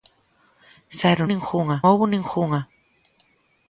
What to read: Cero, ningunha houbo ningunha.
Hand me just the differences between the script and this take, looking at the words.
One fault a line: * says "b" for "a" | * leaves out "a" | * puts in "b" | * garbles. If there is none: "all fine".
all fine